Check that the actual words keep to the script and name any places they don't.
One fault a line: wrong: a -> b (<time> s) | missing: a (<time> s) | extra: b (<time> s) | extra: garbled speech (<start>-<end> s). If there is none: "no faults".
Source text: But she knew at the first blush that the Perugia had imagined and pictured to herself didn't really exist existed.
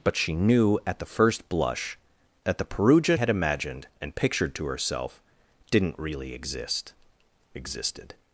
no faults